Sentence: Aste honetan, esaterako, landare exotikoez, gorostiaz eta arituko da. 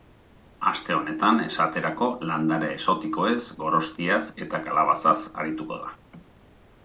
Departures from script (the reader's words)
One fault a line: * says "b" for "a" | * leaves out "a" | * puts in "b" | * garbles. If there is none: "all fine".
* puts in "kalabazaz"